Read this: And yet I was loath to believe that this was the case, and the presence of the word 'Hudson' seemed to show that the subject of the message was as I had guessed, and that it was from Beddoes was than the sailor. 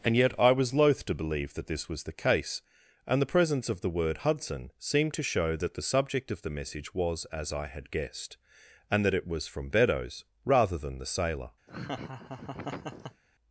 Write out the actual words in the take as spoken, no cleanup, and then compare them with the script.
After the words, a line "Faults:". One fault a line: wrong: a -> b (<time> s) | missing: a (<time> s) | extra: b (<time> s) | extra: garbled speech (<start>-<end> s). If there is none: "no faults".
And yet I was loath to believe that this was the case, and the presence of the word 'Hudson' seemed to show that the subject of the message was as I had guessed, and that it was from Beddoes rather than the sailor.
Faults:
wrong: was -> rather (10.4 s)